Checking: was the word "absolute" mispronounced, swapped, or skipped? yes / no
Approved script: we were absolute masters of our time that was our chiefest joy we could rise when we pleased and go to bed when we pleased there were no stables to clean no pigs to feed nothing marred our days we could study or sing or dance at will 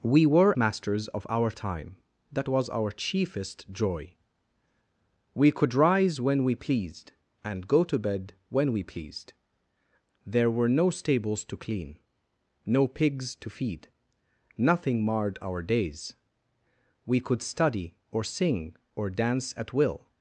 yes